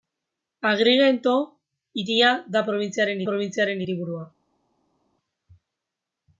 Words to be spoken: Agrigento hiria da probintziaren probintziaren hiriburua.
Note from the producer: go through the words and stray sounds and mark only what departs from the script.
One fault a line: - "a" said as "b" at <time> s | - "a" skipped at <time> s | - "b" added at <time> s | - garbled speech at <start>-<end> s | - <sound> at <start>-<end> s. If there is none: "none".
none